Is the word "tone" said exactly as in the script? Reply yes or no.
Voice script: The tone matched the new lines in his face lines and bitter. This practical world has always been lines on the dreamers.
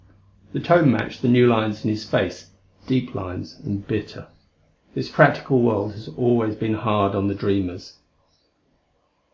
yes